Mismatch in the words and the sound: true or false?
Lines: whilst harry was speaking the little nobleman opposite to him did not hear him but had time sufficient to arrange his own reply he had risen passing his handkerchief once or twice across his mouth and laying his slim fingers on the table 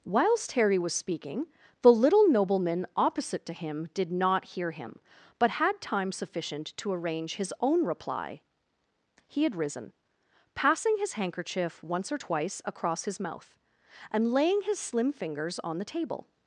false